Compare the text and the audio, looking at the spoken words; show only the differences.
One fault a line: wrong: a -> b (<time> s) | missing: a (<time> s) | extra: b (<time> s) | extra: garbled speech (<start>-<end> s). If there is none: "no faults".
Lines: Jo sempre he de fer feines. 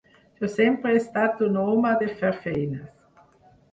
extra: estat un home (1.0 s)